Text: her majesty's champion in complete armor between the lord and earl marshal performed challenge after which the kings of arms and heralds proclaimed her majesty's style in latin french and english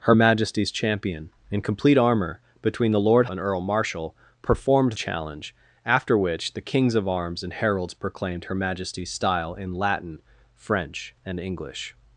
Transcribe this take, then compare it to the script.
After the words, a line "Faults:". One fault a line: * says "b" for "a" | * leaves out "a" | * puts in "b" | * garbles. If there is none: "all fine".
her majesty's champion in complete armor between the lord and earl marshal performed challenge after which the kings of arms and heralds proclaimed her majesty's style in latin french and english
Faults:
all fine